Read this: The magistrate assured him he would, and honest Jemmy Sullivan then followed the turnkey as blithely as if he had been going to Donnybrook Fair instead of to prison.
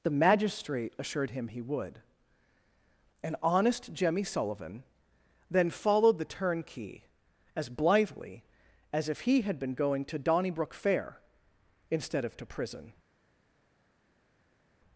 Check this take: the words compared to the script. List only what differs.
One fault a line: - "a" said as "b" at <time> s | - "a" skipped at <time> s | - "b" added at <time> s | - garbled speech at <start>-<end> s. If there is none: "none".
none